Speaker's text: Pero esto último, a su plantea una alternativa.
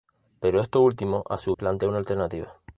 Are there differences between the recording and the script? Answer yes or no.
no